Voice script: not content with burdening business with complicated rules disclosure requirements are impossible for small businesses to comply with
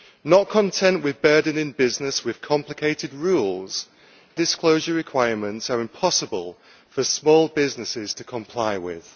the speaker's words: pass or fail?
pass